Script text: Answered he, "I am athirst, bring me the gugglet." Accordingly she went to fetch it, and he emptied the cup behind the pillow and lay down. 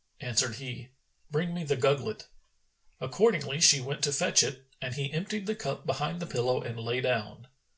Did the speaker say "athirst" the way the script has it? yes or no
no